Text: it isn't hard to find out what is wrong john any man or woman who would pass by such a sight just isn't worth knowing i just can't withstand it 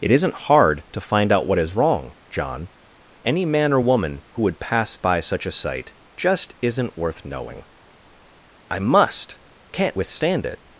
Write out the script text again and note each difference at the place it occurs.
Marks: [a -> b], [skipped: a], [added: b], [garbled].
it isn't hard to find out what is wrong john any man or woman who would pass by such a sight just isn't worth knowing i [just -> must] can't withstand it